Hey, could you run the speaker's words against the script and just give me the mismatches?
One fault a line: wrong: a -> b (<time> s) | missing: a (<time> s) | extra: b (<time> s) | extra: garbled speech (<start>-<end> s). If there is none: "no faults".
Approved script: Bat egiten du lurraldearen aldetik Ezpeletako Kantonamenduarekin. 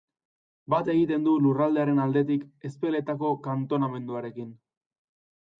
no faults